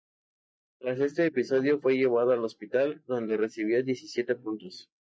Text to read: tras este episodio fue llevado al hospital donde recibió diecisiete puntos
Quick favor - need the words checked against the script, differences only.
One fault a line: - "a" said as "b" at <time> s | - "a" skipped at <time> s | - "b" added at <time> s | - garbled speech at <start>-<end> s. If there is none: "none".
none